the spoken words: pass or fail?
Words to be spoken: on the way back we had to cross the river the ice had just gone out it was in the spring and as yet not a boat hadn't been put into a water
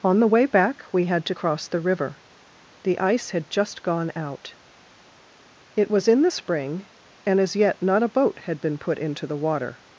fail